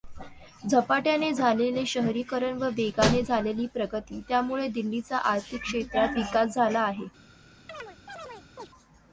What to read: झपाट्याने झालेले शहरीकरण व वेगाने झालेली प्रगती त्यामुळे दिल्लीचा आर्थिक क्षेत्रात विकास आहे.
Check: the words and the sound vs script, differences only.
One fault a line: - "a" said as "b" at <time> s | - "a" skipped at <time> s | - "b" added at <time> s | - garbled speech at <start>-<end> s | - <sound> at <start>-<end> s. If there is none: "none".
- "झाला" added at 6.5 s
- chirp at 7.7-8.7 s